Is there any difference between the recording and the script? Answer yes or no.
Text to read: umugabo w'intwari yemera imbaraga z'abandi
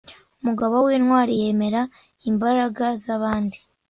no